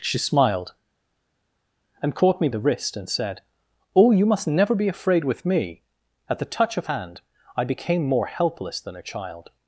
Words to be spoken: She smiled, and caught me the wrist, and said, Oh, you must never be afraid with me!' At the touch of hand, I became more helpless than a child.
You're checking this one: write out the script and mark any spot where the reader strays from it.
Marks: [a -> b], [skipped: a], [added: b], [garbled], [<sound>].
She smiled, and caught me the wrist, and said, Oh, you must never be afraid with me!' At the touch of hand, I became more helpless than a child.